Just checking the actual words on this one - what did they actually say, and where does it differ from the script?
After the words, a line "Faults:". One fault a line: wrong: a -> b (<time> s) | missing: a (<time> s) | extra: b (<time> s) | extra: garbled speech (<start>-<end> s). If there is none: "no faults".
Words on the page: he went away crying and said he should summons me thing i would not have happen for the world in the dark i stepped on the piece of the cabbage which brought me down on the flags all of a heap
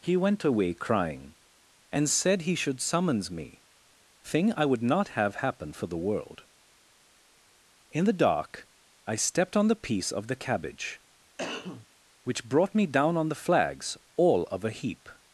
he went away crying and said he should summons me thing i would not have happen for the world in the dark i stepped on the piece of the cabbage which brought me down on the flags all of a heap
Faults:
no faults